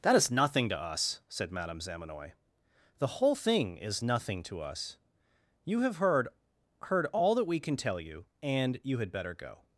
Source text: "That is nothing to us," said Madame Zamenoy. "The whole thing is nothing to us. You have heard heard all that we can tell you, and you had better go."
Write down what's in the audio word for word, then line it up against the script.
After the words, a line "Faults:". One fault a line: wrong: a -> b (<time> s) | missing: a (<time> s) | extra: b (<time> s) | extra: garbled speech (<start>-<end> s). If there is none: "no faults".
"That is nothing to us," said Madame Zamenoy. "The whole thing is nothing to us. You have heard heard all that we can tell you, and you had better go."
Faults:
no faults